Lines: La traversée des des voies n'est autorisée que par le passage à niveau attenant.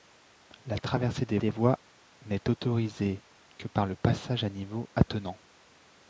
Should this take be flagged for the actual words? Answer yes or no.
no